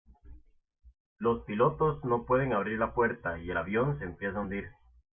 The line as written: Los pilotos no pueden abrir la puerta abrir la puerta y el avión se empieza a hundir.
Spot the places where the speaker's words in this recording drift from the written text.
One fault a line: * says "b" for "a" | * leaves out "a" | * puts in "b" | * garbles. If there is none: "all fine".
* leaves out "abrir la puerta"